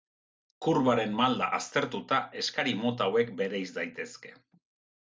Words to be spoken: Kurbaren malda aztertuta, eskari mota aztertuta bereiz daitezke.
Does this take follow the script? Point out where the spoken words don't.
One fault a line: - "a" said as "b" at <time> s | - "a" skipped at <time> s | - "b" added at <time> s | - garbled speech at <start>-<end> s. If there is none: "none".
- "aztertuta" said as "hauek" at 3.1 s